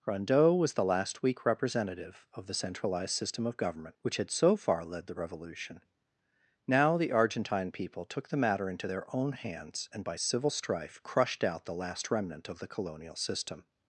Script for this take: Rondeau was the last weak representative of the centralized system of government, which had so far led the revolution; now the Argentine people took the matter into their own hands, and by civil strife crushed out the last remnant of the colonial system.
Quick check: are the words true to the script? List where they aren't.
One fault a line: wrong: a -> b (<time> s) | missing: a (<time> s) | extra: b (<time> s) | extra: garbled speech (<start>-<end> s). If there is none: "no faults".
no faults